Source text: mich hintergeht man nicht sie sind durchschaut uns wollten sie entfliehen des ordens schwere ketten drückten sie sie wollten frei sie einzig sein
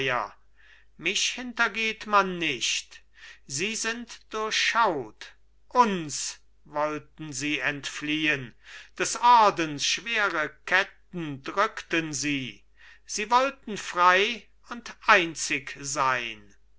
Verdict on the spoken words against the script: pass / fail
fail